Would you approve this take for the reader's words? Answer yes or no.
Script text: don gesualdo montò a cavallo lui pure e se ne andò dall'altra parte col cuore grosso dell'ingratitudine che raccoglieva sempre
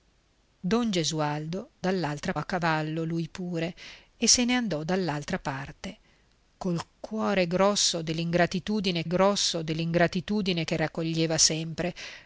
no